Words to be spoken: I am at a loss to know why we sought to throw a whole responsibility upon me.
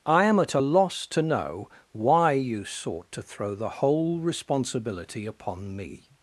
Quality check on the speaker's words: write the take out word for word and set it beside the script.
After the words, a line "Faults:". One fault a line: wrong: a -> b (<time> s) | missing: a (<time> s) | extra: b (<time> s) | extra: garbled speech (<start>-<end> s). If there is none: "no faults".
I am at a loss to know why you sought to throw the whole responsibility upon me.
Faults:
wrong: we -> you (2.3 s)
wrong: a -> the (3.5 s)